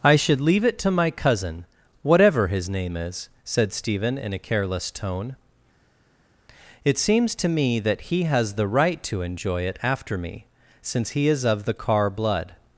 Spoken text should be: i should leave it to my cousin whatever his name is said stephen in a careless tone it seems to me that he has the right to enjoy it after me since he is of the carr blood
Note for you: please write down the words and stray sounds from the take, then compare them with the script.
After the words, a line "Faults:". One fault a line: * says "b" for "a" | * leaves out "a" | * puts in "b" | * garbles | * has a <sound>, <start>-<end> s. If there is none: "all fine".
i should leave it to my cousin whatever his name is said stephen in a careless tone it seems to me that he has the right to enjoy it after me since he is of the carr blood
Faults:
all fine